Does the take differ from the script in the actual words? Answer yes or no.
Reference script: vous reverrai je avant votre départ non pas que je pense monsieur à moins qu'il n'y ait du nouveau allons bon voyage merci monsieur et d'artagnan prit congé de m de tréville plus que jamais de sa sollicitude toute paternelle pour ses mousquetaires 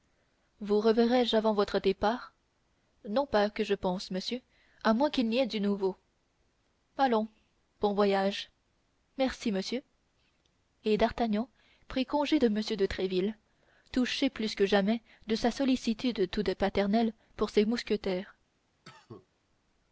yes